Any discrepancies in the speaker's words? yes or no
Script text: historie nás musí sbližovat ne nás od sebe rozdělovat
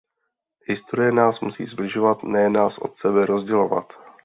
no